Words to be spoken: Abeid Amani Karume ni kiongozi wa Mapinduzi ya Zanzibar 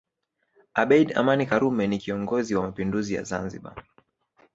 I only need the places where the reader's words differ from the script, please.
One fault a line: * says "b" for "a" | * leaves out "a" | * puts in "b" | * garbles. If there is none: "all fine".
all fine